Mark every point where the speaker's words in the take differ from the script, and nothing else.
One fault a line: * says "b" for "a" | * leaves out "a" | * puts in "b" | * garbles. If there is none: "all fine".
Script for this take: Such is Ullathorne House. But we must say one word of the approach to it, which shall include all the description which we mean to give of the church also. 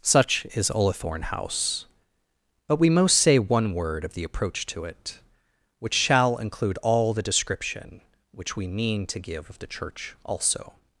* says "most" for "must"